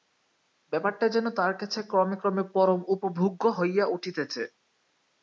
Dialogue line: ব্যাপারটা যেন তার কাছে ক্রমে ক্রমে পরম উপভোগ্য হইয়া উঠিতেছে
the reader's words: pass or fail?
pass